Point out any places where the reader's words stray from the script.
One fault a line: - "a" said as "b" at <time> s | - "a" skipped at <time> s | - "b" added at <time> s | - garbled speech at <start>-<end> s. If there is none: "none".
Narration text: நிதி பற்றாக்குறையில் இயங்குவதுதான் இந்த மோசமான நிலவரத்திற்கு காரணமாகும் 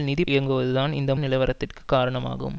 - "பற்றாக்குறையில்" skipped at 0.2 s
- "மோசமான" skipped at 1.1 s